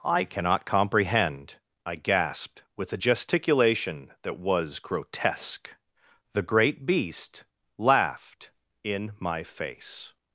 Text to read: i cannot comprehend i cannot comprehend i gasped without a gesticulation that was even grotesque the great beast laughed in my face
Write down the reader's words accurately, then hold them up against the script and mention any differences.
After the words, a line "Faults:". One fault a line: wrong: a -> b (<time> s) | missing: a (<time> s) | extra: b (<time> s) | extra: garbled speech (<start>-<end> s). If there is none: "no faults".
i cannot comprehend i gasped with a gesticulation that was grotesque the great beast laughed in my face
Faults:
missing: cannot comprehend i (2.0 s)
wrong: without -> with (2.8 s)
missing: even (4.8 s)